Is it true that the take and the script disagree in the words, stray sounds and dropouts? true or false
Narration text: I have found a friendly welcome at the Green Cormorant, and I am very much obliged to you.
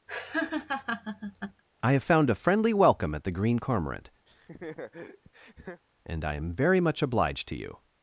true